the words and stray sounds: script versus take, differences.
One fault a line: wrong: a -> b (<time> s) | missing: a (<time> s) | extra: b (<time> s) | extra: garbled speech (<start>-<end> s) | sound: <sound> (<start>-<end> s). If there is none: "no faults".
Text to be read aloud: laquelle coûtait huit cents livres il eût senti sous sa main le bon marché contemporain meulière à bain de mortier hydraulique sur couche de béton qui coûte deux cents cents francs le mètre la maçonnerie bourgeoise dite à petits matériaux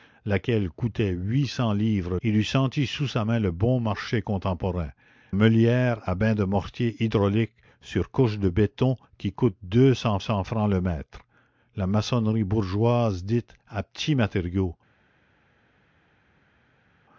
no faults